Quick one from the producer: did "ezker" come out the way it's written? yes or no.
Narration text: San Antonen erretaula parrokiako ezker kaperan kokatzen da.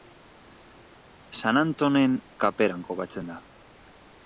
no